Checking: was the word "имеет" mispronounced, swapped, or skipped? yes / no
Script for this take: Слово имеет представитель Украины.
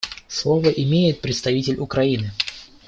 no